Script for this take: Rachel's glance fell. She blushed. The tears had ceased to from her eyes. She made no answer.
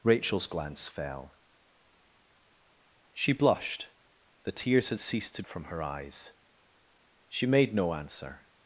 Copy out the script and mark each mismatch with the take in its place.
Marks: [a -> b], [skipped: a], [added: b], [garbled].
Rachel's glance fell. She blushed. The tears had ceased to from her eyes. She made no answer.